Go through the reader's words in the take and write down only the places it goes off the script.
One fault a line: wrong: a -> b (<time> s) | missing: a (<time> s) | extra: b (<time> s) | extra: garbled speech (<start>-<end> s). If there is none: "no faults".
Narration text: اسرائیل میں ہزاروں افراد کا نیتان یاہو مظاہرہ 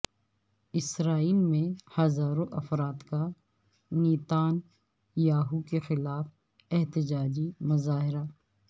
extra: کے خلاف احتجاجی (5.6 s)